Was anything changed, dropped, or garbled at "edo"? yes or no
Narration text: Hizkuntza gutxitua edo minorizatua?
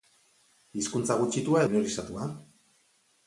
yes